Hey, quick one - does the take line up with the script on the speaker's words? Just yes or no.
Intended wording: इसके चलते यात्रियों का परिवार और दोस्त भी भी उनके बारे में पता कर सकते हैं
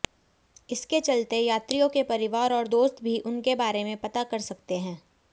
no